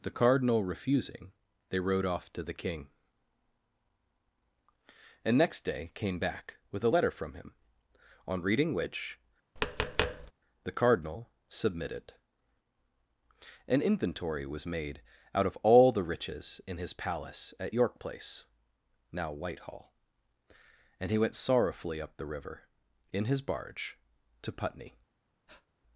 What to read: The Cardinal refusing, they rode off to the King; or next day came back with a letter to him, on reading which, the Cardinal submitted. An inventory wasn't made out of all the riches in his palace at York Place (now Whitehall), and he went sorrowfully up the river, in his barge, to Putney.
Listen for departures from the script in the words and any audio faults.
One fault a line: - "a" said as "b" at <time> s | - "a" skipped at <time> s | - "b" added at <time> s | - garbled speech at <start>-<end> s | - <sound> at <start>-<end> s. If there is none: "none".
- "or" said as "and" at 5.2 s
- "to" said as "from" at 7.1 s
- tap at 9.6-10.3 s
- "wasn't" said as "was" at 14.5 s
- breath at 25.5-25.7 s